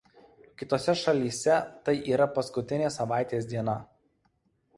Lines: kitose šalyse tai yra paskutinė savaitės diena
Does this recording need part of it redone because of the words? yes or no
no